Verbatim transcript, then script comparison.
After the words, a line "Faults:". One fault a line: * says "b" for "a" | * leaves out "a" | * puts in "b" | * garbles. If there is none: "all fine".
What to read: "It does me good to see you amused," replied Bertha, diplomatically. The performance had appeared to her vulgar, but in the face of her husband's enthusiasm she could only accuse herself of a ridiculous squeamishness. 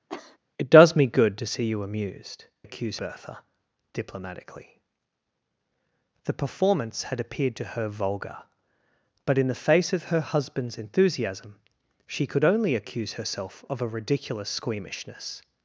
"It does me good to see you amused," accuse Bertha, diplomatically. The performance had appeared to her vulgar, but in the face of her husband's enthusiasm she could only accuse herself of a ridiculous squeamishness.
Faults:
* says "accuse" for "replied"